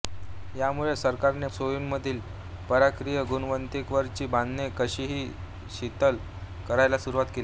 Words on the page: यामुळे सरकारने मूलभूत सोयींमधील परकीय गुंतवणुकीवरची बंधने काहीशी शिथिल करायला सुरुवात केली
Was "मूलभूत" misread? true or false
true